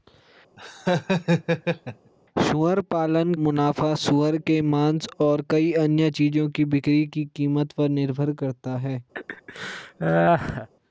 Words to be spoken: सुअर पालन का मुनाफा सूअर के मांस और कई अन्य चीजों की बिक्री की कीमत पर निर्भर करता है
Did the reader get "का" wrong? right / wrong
wrong